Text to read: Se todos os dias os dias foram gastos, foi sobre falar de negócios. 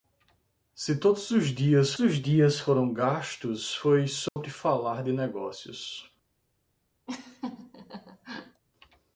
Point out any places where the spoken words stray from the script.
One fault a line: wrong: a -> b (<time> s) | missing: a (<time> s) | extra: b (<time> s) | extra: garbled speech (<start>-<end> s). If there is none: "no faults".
no faults